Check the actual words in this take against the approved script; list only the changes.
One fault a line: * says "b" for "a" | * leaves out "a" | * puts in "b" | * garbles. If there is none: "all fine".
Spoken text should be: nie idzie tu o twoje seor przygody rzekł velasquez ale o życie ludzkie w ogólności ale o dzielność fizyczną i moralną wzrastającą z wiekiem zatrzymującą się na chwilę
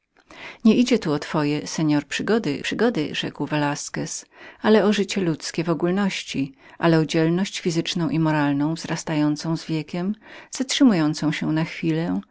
* puts in "przygody"